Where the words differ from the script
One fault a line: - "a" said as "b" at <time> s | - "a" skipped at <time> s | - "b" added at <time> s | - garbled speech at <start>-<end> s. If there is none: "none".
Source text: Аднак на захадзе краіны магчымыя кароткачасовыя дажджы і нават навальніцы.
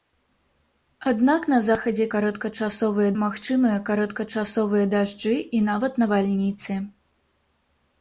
- "краіны" said as "кароткачасовыя" at 2.1 s